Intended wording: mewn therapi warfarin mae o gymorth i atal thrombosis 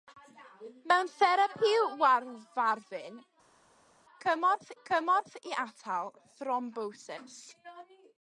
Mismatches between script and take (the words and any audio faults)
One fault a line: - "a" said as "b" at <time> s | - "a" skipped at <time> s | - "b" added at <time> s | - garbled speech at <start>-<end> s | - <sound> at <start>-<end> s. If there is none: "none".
- "mae" said as "gymorth" at 4.3 s